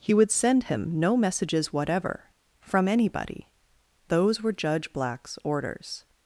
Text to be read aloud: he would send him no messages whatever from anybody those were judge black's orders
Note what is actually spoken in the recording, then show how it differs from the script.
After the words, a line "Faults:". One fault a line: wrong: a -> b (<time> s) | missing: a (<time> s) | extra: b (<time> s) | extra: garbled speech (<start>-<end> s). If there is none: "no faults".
he would send him no messages whatever from anybody those were judge black's orders
Faults:
no faults